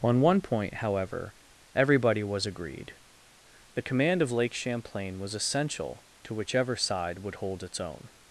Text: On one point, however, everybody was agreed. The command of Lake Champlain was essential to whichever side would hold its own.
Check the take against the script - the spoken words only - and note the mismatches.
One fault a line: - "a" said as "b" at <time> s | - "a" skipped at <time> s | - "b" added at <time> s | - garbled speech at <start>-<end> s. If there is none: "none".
none